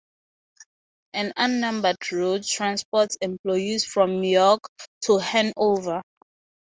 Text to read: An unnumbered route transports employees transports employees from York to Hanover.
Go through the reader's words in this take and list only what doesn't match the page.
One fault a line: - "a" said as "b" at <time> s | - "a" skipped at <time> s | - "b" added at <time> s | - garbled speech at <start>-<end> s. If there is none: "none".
- "transports employees" skipped at 3.9 s